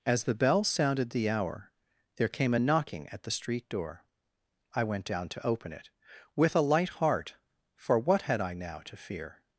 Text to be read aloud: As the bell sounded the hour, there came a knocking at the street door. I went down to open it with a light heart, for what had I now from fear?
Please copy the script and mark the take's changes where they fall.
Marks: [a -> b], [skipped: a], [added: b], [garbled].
As the bell sounded the hour, there came a knocking at the street door. I went down to open it with a light heart, for what had I now [from -> to] fear?